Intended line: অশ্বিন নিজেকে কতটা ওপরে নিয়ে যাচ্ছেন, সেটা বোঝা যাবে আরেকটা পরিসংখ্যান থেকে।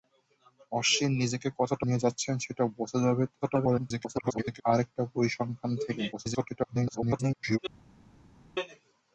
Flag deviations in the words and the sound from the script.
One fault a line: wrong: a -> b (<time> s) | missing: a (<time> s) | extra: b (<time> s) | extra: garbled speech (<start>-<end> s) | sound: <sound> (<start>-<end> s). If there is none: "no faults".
missing: ওপরে (1.9 s)
extra: garbled speech (3.4-4.6 s)
extra: garbled speech (6.1-7.6 s)